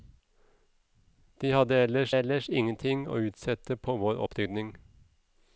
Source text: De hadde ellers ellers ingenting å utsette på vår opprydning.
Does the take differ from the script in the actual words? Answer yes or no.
no